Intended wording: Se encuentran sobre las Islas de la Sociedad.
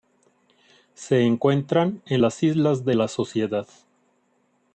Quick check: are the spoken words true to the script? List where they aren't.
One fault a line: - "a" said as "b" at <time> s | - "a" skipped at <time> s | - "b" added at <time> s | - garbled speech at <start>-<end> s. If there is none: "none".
- "sobre" said as "en" at 2.1 s